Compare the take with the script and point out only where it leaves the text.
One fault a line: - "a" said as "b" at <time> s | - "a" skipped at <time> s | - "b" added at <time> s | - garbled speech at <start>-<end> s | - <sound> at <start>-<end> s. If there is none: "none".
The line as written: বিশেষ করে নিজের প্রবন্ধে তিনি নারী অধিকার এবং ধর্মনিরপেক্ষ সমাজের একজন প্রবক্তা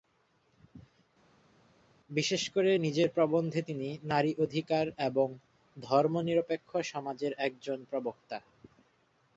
none